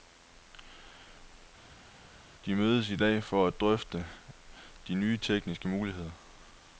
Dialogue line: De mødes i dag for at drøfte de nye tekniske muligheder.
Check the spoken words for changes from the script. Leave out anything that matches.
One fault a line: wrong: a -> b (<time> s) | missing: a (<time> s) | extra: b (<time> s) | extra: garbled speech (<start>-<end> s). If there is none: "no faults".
no faults